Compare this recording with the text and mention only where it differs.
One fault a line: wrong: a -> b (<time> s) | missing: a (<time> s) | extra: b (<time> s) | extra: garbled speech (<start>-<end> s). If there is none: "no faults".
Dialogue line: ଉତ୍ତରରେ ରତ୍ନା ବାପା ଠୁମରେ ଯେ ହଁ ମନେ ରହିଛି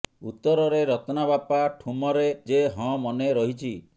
no faults